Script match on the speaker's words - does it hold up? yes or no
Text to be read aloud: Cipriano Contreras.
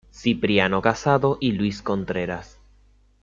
no